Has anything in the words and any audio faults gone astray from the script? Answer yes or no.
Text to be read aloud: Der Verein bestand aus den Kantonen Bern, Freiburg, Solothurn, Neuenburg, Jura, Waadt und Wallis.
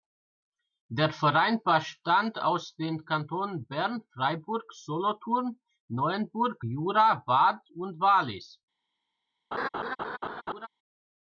yes